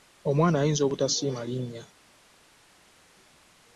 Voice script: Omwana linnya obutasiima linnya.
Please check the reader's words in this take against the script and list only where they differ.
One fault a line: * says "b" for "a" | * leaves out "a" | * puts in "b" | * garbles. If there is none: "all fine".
* says "ayinza" for "linnya"